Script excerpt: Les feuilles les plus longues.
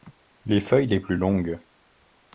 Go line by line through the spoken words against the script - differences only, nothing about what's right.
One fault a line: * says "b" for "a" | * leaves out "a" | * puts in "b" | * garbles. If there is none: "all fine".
all fine